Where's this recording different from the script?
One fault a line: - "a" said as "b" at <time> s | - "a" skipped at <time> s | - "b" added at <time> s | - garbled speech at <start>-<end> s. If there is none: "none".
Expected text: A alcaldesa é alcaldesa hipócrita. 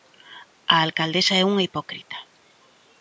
- "alcaldesa" said as "unha" at 1.5 s